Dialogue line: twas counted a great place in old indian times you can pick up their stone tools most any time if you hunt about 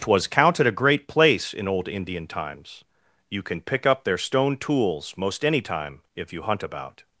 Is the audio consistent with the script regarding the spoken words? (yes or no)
yes